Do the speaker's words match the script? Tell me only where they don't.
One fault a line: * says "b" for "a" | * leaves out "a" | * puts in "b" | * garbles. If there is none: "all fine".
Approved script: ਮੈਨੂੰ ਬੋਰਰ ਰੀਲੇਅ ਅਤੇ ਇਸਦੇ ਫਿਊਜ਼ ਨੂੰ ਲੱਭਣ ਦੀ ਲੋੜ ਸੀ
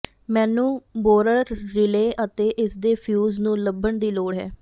* says "ਹੈ" for "ਸੀ"